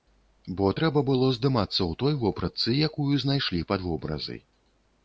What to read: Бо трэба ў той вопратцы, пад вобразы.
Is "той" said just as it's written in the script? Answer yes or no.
yes